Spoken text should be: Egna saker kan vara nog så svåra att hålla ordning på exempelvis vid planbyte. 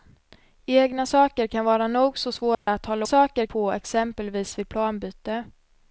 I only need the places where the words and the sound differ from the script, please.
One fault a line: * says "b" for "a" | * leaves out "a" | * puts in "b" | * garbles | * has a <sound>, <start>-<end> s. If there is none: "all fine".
* has a dropout, 2.5-2.7 s
* says "saker" for "ordning"